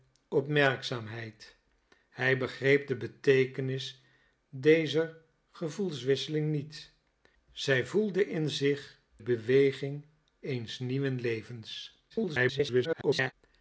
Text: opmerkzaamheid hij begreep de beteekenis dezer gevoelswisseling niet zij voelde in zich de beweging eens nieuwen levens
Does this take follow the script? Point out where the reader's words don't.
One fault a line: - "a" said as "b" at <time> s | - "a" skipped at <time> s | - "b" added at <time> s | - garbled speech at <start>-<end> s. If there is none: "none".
- "de" skipped at 9.0 s
- garbled speech at 12.1-13.3 s